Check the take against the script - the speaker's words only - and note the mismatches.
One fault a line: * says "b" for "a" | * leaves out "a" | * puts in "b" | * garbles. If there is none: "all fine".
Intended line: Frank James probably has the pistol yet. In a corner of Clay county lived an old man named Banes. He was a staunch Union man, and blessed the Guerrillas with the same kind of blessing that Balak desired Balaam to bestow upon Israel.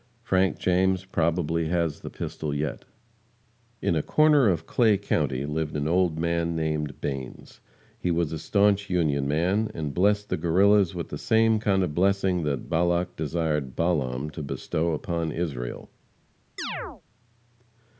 all fine